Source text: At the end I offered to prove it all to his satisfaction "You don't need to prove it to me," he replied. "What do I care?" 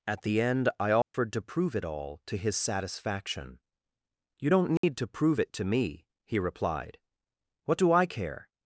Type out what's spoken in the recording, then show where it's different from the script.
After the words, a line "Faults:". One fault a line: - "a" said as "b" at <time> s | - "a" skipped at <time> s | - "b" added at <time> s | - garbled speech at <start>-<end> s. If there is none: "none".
At the end I offered to prove it all to his satisfaction "You don't need to prove it to me," he replied. "What do I care?"
Faults:
none